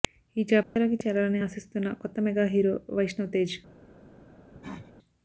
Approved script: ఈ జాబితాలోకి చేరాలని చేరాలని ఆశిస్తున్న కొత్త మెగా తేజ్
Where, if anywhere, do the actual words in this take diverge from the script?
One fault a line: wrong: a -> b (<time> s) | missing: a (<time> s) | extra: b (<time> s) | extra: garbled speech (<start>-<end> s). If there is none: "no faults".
missing: చేరాలని (1.4 s)
extra: హీరో వైష్ణవ్ (2.5 s)